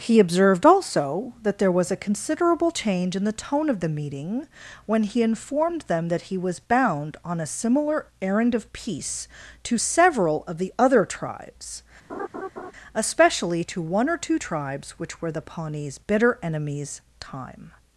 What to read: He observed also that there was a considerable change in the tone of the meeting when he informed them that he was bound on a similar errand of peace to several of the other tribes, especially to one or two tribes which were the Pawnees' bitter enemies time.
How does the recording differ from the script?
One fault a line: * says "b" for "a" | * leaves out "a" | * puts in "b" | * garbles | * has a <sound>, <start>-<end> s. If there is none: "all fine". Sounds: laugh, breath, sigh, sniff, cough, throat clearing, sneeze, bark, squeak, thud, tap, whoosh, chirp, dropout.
* has a laugh, 12.1-12.7 s